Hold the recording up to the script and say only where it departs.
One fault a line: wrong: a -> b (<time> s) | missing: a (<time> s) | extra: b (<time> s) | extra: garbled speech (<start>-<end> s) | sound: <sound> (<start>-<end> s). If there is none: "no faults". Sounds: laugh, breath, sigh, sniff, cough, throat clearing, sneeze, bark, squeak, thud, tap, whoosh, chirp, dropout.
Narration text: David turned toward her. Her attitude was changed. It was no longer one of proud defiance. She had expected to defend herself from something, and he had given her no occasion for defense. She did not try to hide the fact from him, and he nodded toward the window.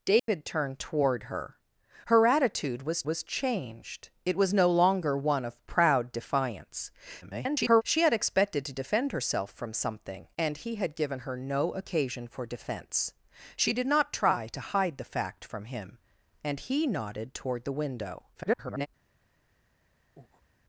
sound: dropout (0.2-0.3 s)
extra: was (3.0 s)
extra: garbled speech (7.2-7.8 s)
extra: garbled speech (18.3-18.9 s)
sound: breath (20.2-20.5 s)